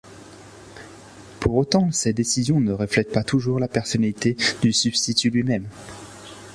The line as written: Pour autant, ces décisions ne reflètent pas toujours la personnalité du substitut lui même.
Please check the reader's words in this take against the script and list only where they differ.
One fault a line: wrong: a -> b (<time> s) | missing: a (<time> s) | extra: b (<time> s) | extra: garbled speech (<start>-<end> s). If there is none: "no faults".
no faults